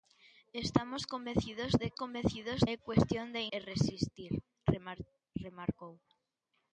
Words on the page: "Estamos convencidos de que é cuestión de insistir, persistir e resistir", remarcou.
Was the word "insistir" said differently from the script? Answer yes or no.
yes